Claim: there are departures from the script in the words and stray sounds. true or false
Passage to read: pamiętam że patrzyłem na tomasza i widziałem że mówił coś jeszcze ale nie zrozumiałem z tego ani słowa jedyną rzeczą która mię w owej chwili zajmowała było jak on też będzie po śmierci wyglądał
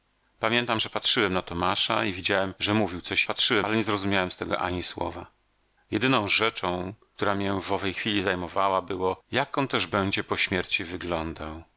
true